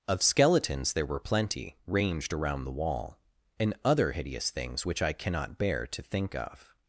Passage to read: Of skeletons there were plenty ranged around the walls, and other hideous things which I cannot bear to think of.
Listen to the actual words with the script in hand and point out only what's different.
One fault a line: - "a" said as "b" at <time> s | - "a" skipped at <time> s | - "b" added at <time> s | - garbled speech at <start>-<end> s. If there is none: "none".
- "walls" said as "wall" at 2.7 s